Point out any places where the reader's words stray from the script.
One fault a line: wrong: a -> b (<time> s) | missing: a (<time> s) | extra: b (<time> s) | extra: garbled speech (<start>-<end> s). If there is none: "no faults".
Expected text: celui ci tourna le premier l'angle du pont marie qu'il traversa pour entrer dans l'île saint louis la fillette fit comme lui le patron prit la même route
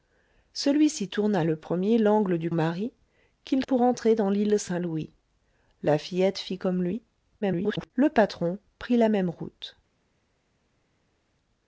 missing: pont (2.5 s)
missing: traversa (3.6 s)
extra: garbled speech (7.4-7.9 s)